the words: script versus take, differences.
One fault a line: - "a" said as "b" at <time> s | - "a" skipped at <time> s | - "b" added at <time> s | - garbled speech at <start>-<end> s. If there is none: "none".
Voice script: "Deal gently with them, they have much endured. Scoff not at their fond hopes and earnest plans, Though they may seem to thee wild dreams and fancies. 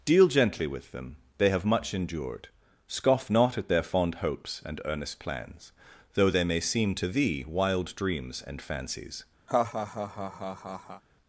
none